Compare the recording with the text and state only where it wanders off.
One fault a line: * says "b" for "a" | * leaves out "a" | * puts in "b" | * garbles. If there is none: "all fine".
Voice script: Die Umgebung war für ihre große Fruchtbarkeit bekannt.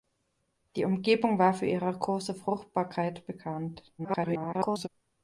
* garbles